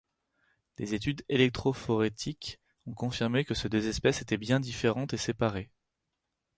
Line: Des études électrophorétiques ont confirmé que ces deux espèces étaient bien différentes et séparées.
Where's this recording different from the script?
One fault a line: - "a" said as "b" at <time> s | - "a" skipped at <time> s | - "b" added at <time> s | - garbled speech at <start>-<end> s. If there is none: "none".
none